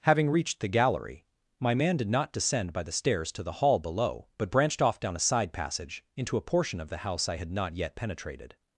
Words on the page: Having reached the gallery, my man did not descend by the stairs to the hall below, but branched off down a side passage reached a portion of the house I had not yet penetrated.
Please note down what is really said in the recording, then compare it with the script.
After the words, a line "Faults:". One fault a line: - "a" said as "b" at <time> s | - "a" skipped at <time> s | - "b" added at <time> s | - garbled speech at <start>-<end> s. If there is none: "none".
Having reached the gallery, my man did not descend by the stairs to the hall below, but branched off down a side passage into a portion of the house I had not yet penetrated.
Faults:
- "reached" said as "into" at 6.2 s